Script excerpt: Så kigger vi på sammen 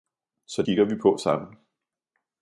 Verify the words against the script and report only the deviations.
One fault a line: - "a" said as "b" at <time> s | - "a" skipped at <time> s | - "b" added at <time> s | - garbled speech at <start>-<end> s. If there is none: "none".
none